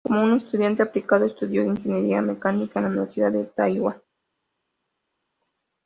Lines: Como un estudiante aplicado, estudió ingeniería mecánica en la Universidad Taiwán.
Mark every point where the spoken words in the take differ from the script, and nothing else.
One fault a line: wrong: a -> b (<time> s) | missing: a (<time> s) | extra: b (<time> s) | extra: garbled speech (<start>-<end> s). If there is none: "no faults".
extra: de (3.3 s)